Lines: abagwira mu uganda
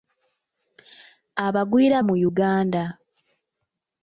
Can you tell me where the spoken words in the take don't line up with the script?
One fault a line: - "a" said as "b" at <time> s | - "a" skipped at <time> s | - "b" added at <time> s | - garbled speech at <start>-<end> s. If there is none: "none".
none